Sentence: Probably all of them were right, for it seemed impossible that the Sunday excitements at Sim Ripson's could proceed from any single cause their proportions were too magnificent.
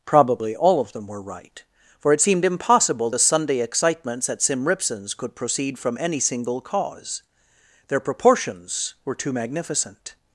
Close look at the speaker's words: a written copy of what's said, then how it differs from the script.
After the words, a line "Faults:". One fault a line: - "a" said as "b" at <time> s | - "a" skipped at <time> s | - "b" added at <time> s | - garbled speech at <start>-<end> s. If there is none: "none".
Probably all of them were right, for it seemed impossible the Sunday excitements at Sim Ripson's could proceed from any single cause their proportions were too magnificent.
Faults:
- "that" skipped at 3.1 s